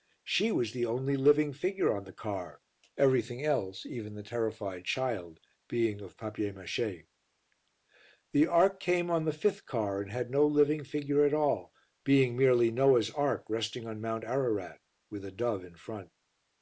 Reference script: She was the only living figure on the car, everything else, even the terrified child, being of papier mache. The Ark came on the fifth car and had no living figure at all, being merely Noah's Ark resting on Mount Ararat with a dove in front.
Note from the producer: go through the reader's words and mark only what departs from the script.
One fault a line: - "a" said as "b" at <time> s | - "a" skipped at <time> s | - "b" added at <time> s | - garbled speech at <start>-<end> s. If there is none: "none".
none